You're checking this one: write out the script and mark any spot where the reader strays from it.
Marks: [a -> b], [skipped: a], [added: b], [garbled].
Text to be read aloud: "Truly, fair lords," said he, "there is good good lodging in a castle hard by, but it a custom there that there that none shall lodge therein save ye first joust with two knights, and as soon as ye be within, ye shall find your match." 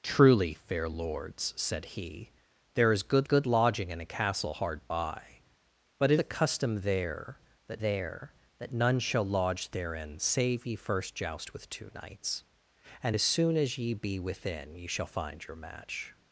"Truly, fair lords," said he, "there is good good lodging in a castle hard by, but it a custom there that there that none shall lodge therein save ye first joust with two knights, and as soon as ye be within, ye shall find your match."